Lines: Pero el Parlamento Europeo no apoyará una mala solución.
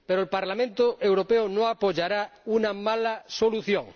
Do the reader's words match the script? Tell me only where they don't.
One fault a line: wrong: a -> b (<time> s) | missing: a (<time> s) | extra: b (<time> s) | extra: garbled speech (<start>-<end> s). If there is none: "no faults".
no faults